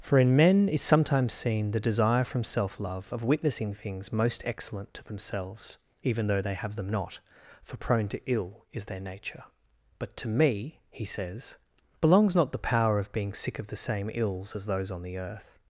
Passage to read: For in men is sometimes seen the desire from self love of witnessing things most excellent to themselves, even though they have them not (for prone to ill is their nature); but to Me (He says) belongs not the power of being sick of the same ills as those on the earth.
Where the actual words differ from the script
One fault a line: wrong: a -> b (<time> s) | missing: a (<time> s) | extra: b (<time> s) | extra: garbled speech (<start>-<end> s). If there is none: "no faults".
no faults